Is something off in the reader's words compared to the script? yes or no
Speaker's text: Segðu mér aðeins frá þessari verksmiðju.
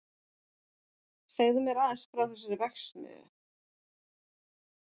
no